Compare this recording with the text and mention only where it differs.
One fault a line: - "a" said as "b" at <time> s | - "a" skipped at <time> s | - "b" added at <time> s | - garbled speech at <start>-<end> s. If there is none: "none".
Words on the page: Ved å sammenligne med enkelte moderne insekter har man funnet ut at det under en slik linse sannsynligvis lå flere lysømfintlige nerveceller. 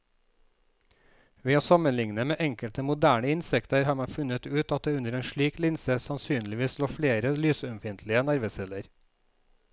none